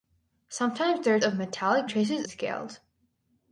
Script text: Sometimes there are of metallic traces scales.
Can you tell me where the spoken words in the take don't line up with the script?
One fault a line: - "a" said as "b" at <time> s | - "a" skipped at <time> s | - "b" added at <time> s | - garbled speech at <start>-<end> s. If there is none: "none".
none